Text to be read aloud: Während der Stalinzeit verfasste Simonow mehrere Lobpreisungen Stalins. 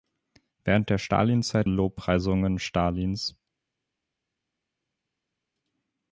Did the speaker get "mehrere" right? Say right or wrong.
wrong